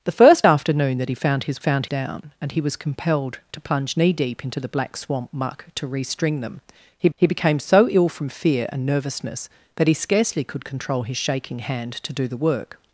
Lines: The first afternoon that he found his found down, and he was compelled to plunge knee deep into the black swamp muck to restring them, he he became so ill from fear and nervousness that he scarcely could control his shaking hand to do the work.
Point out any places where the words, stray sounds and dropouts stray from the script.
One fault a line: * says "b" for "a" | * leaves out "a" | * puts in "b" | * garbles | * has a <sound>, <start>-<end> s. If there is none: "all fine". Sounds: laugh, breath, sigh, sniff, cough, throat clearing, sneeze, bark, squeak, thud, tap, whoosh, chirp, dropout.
all fine